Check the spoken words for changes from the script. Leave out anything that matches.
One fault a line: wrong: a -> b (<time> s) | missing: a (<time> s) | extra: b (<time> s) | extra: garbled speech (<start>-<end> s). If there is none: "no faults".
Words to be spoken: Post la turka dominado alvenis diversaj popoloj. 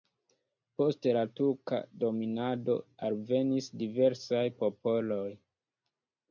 no faults